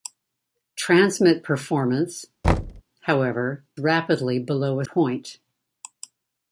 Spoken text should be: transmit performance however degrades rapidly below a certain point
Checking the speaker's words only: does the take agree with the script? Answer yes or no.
no